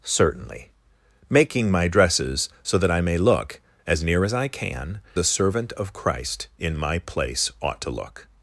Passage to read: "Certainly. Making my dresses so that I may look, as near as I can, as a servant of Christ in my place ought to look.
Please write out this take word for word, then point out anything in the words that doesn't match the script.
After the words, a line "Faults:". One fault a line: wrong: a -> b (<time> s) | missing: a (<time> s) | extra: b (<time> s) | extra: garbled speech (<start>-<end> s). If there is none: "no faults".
"Certainly. Making my dresses so that I may look, as near as I can, a servant of Christ in my place ought to look.
Faults:
missing: as (5.0 s)